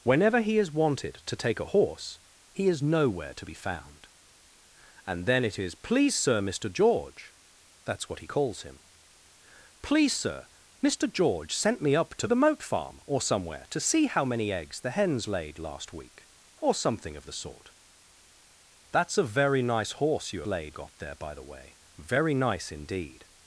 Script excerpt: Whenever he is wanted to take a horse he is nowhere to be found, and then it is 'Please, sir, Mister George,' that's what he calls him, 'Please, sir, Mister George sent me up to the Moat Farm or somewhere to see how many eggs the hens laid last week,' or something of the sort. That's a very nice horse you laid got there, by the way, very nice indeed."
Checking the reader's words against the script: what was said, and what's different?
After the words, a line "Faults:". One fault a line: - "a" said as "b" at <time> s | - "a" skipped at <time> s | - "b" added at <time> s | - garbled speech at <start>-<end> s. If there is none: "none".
Whenever he is wanted to take a horse he is nowhere to be found, and then it is 'Please, sir, Mister George,' that's what he calls him, 'Please, sir, Mister George sent me up to the Moat Farm or somewhere to see how many eggs the hens laid last week,' or something of the sort. That's a very nice horse you laid got there, by the way, very nice indeed."
Faults:
none